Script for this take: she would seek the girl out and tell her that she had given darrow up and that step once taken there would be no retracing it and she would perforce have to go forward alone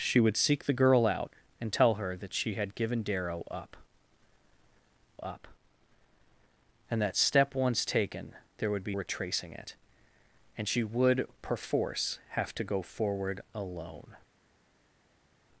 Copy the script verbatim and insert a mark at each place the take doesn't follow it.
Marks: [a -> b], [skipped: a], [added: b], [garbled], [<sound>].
she would seek the girl out and tell her that she had given darrow up [added: up] and that step once taken there would be [skipped: no] retracing it and she would perforce have to go forward alone